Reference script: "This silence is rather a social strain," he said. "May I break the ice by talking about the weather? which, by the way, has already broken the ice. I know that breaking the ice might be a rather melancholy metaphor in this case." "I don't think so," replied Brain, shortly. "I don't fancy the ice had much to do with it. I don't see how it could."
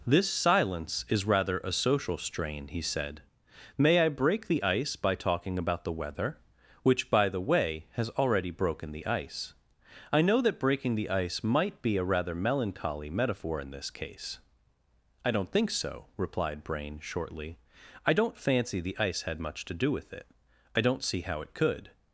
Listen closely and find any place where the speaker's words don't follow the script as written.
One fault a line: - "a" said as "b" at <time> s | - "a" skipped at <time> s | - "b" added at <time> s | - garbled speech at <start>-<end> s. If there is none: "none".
none